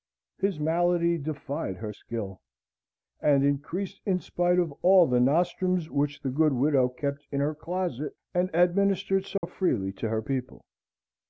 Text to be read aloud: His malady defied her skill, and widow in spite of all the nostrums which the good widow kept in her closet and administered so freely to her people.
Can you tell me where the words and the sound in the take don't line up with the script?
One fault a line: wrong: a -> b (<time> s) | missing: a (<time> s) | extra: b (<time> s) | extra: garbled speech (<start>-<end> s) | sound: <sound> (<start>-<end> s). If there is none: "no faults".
wrong: widow -> increased (3.4 s)
sound: dropout (9.4-9.4 s)